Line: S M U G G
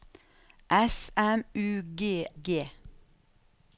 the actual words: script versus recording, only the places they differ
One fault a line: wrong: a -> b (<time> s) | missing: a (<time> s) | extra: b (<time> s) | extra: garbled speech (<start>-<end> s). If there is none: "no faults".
no faults